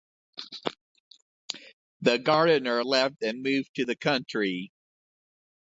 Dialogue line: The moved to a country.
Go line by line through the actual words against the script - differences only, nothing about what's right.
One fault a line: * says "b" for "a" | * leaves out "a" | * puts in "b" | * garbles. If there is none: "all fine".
* puts in "gardener left and"
* says "the" for "a"